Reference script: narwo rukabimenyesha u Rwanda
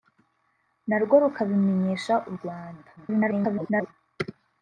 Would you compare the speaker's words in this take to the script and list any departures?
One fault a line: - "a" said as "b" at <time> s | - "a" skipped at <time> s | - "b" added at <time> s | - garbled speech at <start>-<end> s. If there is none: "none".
- garbled speech at 3.0-3.9 s